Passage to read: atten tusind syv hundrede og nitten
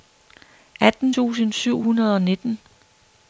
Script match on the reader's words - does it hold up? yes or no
yes